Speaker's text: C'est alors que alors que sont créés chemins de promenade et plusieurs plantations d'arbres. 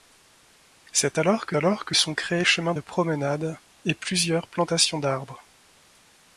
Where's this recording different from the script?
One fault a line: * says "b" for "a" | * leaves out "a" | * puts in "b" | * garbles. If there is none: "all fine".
all fine